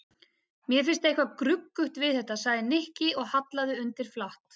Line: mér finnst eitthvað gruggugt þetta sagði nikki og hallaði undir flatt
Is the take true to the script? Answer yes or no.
no